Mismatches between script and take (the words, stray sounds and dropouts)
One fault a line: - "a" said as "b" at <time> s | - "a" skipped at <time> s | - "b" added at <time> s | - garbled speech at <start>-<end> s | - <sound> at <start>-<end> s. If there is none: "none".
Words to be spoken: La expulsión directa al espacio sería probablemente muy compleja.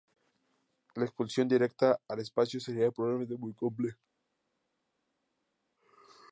none